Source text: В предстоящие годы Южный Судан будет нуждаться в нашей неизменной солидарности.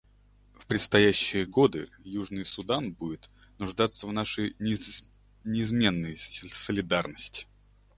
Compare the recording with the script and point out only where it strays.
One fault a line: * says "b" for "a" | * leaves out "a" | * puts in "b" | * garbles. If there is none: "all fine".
all fine